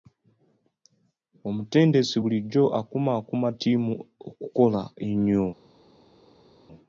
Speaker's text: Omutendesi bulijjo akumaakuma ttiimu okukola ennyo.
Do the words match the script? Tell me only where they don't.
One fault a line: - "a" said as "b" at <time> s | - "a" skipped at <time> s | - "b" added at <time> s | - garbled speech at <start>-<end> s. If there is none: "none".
none